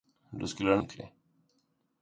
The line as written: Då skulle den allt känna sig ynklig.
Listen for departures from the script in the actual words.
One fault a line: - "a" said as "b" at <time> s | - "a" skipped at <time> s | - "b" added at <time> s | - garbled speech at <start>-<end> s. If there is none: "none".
- "allt känna sig" skipped at 0.8 s